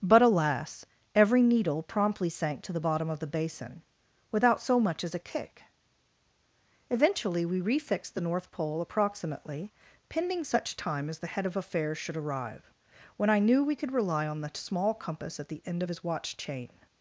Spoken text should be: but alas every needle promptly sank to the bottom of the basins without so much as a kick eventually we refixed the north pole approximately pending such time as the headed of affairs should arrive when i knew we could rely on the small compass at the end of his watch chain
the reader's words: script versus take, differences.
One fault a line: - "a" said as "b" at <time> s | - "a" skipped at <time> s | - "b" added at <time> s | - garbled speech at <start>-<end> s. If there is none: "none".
- "basins" said as "basin" at 3.3 s
- "headed" said as "head" at 11.3 s